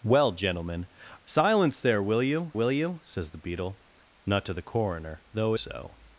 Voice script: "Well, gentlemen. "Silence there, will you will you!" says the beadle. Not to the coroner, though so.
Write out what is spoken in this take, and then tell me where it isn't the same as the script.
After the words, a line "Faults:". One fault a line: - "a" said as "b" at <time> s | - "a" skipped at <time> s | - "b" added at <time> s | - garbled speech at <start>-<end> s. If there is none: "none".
"Well, gentlemen. "Silence there, will you will you!" says the beadle. Not to the coroner, though so.
Faults:
none